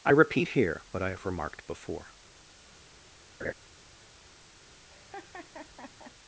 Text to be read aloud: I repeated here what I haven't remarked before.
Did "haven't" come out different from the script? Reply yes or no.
yes